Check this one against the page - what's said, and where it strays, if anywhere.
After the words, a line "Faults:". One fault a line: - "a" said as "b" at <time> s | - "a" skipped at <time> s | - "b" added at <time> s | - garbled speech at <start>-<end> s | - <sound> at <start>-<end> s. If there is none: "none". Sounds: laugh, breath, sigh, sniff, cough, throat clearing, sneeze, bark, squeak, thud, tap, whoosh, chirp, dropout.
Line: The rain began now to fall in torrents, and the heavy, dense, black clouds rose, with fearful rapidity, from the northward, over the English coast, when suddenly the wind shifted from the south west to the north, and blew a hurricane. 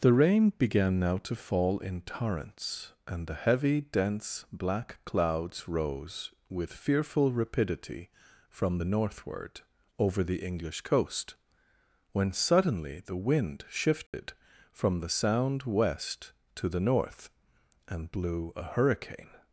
The rain began now to fall in torrents, and the heavy, dense, black clouds rose, with fearful rapidity, from the northward, over the English coast, when suddenly the wind shifted from the sound west to the north, and blew a hurricane.
Faults:
- dropout at 14.1-14.1 s
- "south" said as "sound" at 15.1 s